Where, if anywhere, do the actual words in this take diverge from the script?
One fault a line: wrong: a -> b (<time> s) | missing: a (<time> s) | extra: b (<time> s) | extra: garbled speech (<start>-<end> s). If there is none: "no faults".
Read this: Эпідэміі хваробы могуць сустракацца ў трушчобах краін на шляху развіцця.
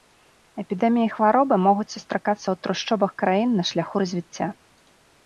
no faults